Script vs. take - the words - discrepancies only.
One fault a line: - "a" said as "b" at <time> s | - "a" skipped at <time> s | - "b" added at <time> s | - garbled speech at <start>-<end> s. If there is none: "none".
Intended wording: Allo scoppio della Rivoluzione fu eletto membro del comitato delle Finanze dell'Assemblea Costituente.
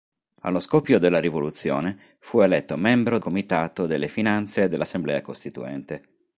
- "del" skipped at 3.2 s